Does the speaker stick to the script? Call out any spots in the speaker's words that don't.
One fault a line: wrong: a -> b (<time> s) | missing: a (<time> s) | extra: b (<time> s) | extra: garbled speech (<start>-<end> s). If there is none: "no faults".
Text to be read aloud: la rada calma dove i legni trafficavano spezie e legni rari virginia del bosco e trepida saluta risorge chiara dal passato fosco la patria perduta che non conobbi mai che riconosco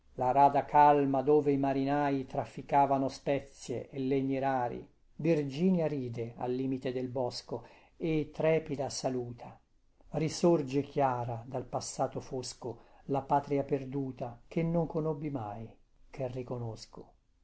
wrong: legni -> marinai (1.6 s)
extra: ride al limite (5.9 s)